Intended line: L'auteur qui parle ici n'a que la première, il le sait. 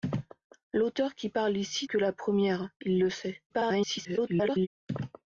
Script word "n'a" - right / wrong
wrong